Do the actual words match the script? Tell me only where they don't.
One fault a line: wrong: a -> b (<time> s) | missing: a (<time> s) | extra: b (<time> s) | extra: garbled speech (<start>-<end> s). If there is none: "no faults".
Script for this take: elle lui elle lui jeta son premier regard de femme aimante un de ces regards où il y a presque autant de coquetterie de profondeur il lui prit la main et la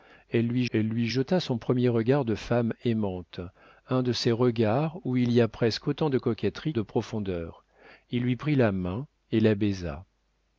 no faults